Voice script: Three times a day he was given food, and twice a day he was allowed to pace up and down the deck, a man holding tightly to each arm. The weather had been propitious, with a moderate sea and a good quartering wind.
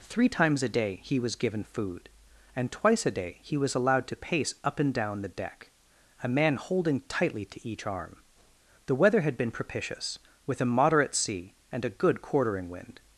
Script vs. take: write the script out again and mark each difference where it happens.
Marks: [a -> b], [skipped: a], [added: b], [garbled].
Three times a day he was given food, and twice a day he was allowed to pace up and down the deck, a man holding tightly to each arm. The weather had been propitious, with a moderate sea and a good quartering wind.